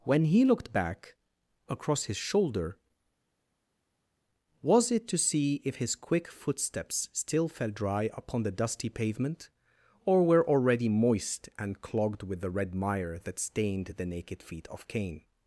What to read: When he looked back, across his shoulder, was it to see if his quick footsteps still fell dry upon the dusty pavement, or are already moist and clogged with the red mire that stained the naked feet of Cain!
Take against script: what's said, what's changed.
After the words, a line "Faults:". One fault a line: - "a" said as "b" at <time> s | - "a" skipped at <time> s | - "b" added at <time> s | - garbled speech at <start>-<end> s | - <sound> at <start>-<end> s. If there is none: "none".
When he looked back, across his shoulder, was it to see if his quick footsteps still fell dry upon the dusty pavement, or were already moist and clogged with the red mire that stained the naked feet of Cain!
Faults:
- "are" said as "were" at 10.2 s